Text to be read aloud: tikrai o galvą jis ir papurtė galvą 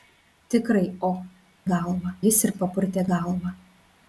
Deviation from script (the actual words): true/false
false